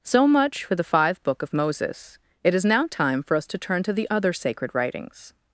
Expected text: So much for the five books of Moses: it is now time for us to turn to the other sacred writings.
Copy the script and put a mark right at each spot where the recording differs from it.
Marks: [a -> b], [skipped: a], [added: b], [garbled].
So much for the five [books -> book] of Moses: it is now time for us to turn to the other sacred writings.